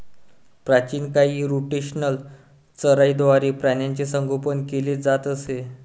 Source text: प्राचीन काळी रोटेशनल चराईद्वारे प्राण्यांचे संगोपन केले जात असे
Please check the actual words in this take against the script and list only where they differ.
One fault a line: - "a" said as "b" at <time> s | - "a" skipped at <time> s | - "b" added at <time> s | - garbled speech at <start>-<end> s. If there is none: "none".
none